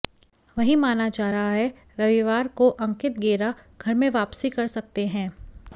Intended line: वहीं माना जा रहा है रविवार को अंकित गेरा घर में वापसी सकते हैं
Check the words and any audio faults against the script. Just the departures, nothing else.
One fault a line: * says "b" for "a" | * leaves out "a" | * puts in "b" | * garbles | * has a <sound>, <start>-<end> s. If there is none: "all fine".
* puts in "कर"